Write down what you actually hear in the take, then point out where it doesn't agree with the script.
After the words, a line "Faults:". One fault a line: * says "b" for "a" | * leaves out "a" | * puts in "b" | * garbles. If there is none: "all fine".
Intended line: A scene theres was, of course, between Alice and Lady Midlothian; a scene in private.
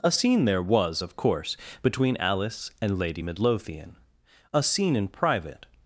A scene there was, of course, between Alice and Lady Midlothian; a scene in private.
Faults:
* says "there" for "theres"